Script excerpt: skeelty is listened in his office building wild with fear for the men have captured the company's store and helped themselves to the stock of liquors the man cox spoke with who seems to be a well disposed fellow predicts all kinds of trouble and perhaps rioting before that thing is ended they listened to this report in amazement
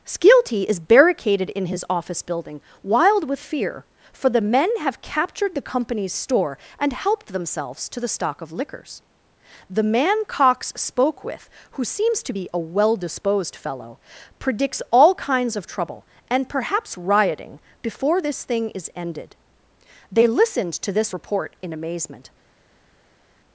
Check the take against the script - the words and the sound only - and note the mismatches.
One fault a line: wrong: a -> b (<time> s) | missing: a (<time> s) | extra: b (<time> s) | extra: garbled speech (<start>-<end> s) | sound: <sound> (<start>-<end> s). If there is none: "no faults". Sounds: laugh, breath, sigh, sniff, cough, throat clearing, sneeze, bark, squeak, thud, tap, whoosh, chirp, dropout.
wrong: listened -> barricaded (0.8 s)
wrong: that -> this (18.2 s)